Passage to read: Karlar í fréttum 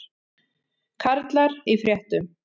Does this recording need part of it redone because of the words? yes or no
no